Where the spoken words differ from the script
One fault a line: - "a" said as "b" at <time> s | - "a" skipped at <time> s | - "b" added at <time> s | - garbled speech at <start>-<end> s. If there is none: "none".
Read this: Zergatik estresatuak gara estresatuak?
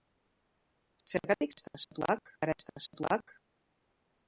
none